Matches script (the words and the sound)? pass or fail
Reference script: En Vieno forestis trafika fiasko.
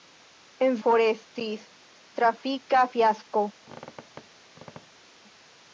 fail